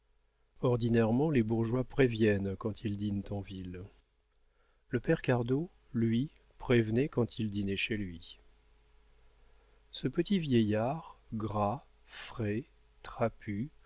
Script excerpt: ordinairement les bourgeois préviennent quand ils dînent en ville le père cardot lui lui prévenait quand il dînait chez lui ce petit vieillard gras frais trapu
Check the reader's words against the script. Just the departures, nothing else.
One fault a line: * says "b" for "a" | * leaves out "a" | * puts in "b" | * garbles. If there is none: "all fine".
* leaves out "lui"